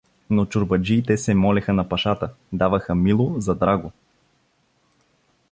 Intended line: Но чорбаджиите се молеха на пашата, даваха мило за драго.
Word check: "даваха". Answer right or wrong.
right